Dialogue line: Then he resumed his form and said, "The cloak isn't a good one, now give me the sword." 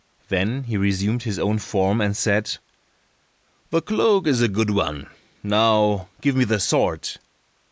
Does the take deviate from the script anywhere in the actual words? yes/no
yes